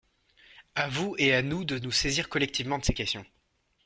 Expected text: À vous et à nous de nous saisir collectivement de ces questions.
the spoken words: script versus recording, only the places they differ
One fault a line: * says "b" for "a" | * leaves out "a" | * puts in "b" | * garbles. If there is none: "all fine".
all fine